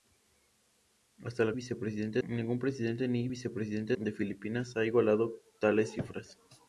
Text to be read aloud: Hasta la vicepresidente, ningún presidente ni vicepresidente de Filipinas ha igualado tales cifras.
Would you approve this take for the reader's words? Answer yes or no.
yes